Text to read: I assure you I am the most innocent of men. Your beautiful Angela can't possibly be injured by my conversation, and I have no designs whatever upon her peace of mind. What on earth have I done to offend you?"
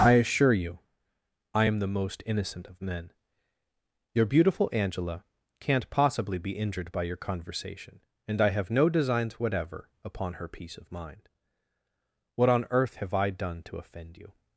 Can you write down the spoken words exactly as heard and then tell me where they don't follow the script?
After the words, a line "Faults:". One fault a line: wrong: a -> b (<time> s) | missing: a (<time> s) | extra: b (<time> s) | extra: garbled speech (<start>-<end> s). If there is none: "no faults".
I assure you I am the most innocent of men. Your beautiful Angela can't possibly be injured by your conversation, and I have no designs whatever upon her peace of mind. What on earth have I done to offend you?"
Faults:
wrong: my -> your (7.0 s)